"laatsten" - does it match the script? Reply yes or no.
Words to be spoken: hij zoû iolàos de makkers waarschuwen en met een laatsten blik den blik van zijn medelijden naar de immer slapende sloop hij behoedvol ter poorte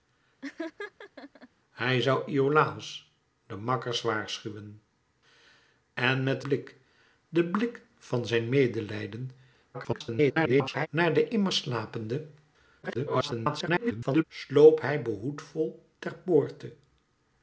no